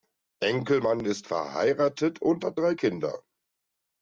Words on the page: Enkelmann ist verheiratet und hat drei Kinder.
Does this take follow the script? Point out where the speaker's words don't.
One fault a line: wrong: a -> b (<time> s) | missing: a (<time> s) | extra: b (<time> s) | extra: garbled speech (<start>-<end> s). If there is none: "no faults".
no faults